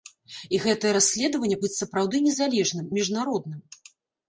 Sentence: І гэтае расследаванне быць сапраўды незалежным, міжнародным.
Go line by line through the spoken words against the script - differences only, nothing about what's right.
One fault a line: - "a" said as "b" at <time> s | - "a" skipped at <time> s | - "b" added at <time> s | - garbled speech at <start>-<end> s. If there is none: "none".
none